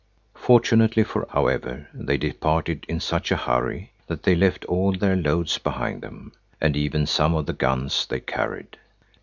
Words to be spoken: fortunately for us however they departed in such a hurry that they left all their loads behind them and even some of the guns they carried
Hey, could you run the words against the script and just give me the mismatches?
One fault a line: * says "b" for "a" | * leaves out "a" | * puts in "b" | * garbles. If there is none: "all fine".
* leaves out "us"